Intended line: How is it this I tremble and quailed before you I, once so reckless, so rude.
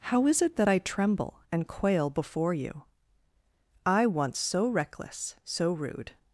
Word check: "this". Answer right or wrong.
wrong